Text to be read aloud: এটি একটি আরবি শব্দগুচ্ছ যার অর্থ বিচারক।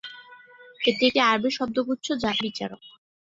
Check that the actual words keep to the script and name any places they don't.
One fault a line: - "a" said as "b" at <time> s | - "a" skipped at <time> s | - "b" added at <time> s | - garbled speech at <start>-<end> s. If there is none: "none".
- "অর্থ" skipped at 2.3 s